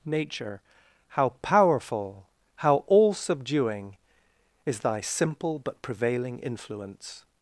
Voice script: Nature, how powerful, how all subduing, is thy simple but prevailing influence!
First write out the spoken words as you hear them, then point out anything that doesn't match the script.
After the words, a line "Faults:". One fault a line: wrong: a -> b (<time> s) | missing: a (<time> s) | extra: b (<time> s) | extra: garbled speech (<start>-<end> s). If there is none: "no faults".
Nature, how powerful, how all subduing, is thy simple but prevailing influence!
Faults:
no faults